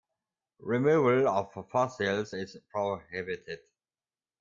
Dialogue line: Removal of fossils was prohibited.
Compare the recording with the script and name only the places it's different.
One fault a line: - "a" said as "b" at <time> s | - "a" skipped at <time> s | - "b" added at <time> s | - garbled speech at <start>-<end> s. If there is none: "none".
- "was" said as "is" at 2.3 s